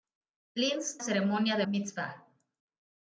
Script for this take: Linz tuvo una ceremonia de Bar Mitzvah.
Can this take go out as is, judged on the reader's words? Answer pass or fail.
fail